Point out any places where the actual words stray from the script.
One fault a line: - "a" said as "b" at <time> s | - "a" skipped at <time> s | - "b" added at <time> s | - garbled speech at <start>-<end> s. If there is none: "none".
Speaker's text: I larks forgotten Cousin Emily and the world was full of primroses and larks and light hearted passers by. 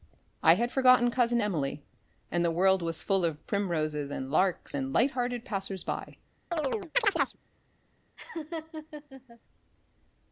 - "larks" said as "had" at 0.6 s